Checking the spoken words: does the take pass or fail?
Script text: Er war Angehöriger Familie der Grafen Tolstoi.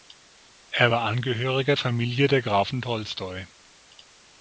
pass